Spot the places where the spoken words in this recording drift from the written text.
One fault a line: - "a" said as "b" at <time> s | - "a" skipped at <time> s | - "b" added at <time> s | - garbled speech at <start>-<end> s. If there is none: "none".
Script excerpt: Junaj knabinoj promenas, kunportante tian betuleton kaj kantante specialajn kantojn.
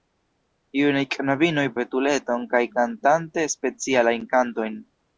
- "promenas kunportante tian" skipped at 1.6 s